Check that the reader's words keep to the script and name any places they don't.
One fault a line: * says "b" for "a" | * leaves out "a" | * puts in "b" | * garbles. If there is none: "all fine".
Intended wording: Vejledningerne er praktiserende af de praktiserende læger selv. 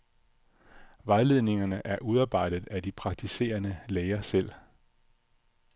* says "udarbejdet" for "praktiserende"